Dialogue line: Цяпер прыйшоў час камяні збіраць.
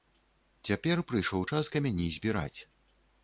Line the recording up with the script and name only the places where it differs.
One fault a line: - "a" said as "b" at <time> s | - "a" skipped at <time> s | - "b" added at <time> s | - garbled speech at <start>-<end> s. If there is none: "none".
none